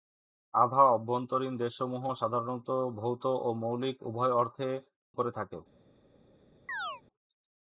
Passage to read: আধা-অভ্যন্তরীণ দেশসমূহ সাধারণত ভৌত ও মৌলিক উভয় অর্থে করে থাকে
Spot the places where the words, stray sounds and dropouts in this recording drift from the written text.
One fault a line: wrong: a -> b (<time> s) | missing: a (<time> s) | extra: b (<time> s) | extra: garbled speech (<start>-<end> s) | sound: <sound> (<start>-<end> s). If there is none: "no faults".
sound: chirp (6.7-7.0 s)